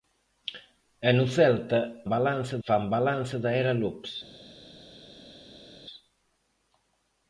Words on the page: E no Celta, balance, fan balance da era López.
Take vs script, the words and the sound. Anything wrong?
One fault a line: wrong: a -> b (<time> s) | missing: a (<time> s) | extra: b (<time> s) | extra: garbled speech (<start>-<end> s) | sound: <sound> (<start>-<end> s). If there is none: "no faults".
no faults